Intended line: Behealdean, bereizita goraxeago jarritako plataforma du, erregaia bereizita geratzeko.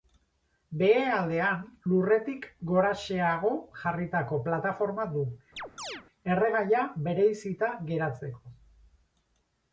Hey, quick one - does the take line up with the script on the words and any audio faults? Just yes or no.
no